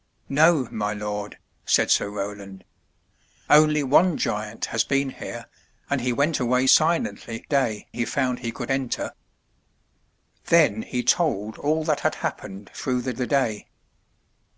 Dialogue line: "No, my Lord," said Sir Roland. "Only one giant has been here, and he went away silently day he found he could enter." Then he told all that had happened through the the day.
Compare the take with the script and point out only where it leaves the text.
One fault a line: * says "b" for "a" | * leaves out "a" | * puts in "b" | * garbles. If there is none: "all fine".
all fine